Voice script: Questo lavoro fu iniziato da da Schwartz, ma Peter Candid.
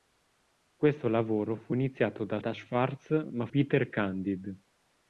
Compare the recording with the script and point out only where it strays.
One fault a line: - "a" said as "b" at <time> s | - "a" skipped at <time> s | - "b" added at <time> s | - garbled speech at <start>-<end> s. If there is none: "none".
none